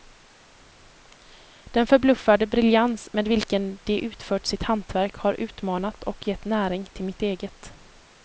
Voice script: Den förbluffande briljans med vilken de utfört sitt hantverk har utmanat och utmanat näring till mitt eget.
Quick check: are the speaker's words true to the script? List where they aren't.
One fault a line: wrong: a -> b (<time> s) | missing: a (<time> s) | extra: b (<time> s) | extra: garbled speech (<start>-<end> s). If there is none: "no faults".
wrong: utmanat -> gett (6.3 s)